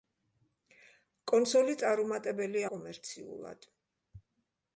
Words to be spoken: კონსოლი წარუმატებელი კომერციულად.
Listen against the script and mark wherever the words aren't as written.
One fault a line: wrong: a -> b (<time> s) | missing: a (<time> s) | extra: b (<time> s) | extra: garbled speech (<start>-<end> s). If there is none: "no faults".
no faults